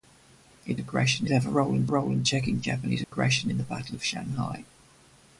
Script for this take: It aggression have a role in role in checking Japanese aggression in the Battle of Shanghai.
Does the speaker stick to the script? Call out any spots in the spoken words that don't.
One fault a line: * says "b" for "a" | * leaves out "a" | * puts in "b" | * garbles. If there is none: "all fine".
all fine